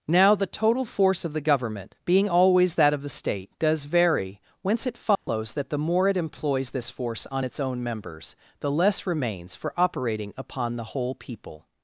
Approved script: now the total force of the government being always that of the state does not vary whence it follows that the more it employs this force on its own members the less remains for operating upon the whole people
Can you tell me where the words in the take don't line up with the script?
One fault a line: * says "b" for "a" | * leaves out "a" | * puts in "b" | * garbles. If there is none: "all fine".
* leaves out "not"